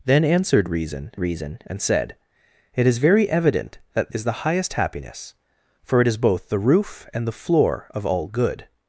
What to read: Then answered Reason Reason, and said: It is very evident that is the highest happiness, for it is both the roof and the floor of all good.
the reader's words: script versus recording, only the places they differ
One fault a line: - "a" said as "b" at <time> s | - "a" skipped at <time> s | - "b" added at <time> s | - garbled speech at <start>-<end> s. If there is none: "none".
none